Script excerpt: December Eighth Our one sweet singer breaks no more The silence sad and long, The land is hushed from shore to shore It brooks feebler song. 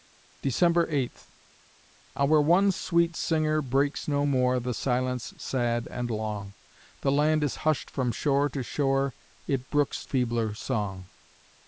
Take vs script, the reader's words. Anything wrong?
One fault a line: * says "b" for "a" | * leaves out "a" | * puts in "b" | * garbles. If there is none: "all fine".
all fine